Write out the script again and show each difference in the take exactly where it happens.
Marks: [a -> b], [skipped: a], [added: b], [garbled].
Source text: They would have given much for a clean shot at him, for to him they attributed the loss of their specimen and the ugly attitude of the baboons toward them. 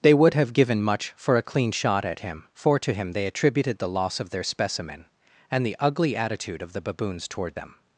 They would have given much for a clean shot at him, for to him they attributed the loss of their specimen and the ugly attitude of the baboons toward them.